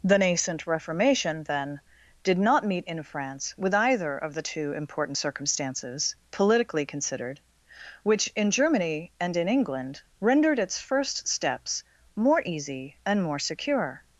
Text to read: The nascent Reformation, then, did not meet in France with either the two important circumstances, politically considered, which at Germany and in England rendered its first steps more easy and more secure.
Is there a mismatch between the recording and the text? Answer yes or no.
yes